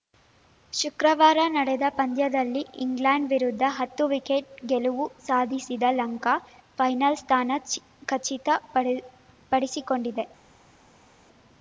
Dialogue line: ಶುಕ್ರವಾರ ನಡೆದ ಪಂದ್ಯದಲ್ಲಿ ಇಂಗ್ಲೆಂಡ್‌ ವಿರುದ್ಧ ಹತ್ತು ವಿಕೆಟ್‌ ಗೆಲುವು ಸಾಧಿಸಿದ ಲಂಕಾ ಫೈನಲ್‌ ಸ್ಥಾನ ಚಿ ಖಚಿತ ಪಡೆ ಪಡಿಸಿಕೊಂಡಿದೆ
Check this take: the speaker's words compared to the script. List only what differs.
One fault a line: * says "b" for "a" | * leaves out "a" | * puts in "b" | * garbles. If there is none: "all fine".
all fine